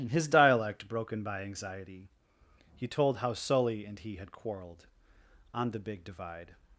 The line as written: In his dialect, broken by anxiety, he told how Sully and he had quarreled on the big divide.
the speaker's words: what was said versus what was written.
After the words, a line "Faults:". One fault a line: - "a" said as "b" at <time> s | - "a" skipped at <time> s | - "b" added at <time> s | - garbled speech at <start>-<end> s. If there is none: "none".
In his dialect, broken by anxiety, he told how Sully and he had quarreled on the big divide.
Faults:
none